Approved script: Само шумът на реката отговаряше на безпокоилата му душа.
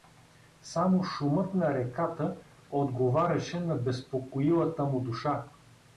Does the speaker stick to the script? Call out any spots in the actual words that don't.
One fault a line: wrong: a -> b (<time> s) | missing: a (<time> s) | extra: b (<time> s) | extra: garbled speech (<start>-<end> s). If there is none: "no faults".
no faults